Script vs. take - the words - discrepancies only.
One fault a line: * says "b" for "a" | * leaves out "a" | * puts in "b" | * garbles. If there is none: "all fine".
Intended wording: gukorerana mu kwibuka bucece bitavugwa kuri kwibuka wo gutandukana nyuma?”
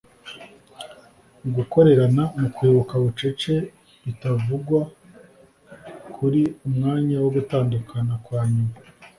* says "umwanya" for "kwibuka"
* puts in "kwa"